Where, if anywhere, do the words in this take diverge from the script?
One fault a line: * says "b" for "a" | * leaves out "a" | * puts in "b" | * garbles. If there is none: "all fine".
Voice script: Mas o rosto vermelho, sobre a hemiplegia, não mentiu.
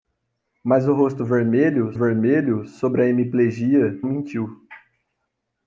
* puts in "vermelho"
* leaves out "não"